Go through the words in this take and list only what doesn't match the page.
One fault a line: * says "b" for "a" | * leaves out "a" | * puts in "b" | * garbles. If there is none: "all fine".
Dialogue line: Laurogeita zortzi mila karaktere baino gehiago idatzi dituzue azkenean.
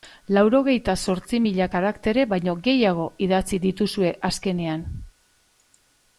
all fine